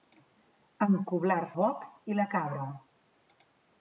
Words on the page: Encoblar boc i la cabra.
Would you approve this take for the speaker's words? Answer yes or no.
yes